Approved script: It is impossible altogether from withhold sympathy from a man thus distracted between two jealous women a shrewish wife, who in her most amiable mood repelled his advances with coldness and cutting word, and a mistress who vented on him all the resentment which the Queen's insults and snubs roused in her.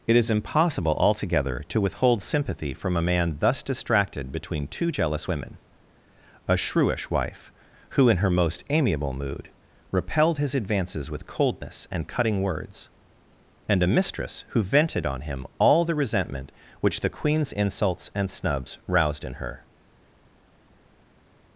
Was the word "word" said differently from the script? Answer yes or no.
yes